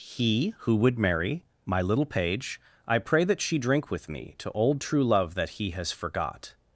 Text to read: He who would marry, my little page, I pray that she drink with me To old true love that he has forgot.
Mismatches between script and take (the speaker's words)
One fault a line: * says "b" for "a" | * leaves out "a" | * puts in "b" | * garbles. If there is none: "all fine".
all fine